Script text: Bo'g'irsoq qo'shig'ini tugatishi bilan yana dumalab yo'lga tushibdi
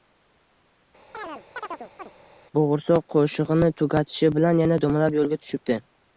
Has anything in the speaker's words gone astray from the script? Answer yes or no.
no